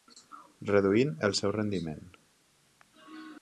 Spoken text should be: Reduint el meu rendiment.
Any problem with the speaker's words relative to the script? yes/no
yes